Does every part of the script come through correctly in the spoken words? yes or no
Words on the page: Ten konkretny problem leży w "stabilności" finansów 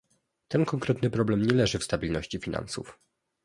no